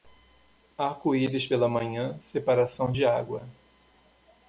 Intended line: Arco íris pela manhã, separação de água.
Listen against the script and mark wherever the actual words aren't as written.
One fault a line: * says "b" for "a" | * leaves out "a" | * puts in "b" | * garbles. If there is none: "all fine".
all fine